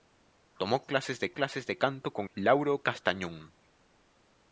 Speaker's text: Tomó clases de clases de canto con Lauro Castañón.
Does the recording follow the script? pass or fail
pass